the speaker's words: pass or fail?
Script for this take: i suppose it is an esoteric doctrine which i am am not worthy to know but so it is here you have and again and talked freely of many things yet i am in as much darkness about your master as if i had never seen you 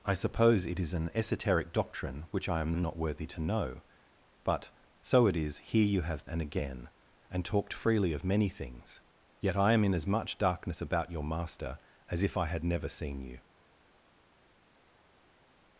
pass